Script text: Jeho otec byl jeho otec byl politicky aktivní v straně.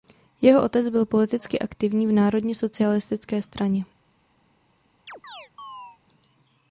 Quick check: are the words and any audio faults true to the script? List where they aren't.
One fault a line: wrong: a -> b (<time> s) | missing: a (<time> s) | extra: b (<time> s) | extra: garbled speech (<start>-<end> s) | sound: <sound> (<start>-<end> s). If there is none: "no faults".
missing: jeho otec byl (1.1 s)
extra: národně socialistické (2.1 s)
sound: chirp (5.1-6.0 s)